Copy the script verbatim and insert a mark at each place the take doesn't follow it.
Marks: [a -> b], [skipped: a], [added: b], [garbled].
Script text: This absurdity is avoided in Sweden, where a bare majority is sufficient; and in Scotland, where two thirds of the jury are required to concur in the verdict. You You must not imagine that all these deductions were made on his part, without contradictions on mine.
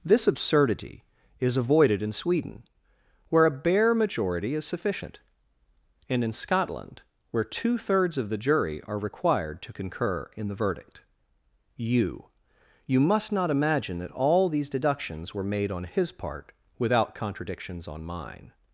This absurdity is avoided in Sweden, where a bare majority is sufficient; and in Scotland, where two thirds of the jury are required to concur in the verdict. You You must not imagine that all these deductions were made on his part, without contradictions on mine.